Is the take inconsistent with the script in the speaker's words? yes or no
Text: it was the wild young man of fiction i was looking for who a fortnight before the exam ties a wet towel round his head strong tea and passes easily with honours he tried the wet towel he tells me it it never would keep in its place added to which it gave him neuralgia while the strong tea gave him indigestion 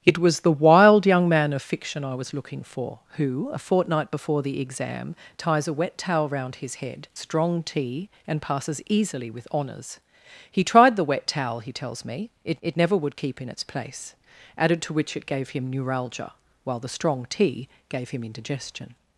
no